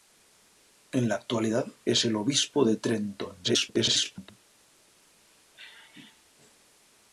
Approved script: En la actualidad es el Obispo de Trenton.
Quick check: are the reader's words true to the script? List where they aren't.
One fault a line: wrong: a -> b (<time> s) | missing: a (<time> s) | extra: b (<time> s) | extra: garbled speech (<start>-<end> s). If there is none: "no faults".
extra: garbled speech (3.4-4.3 s)